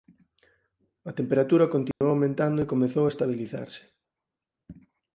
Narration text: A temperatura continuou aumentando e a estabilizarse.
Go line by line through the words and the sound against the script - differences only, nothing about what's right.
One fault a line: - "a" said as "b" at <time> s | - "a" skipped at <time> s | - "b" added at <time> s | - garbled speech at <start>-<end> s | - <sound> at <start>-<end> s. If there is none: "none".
- dropout at 1.9-2.0 s
- "comezou" added at 2.7 s